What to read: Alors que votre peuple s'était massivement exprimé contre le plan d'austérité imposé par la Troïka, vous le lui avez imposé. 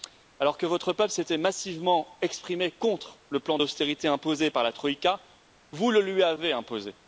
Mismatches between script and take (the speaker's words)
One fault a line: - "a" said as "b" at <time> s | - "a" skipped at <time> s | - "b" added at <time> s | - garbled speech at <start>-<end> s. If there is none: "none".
none